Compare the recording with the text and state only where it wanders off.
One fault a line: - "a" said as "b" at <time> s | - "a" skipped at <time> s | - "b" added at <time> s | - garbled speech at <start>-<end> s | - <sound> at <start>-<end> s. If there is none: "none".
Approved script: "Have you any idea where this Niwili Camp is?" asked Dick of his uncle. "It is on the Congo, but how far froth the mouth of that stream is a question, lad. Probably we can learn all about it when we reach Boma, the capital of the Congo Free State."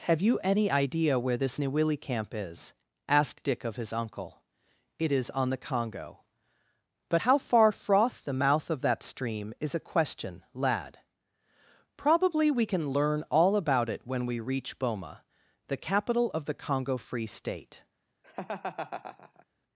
- laugh at 18.2-19.5 s